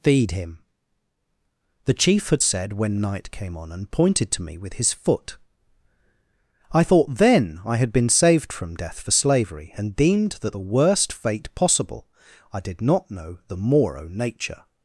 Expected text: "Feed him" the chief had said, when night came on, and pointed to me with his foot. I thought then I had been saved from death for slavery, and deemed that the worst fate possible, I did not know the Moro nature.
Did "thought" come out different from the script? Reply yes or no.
no